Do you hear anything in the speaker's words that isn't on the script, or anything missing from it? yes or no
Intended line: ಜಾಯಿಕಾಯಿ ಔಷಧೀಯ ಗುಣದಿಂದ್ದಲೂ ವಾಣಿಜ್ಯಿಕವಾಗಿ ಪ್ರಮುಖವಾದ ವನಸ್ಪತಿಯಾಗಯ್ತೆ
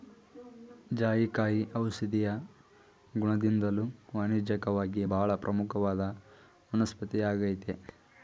yes